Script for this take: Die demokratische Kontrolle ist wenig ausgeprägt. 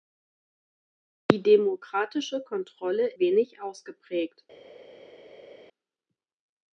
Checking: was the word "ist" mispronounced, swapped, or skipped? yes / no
yes